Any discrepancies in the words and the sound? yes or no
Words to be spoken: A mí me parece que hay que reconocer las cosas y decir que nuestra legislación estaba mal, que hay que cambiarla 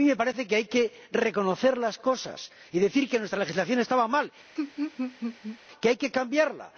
yes